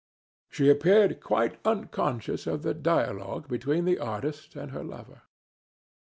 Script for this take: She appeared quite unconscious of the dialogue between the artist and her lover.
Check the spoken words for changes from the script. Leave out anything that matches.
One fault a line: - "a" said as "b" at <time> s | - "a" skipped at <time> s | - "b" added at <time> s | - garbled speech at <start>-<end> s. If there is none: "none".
none